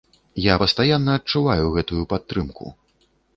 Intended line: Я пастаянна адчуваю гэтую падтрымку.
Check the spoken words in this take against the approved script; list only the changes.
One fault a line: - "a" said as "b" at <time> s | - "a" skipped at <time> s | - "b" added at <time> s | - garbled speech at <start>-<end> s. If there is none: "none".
none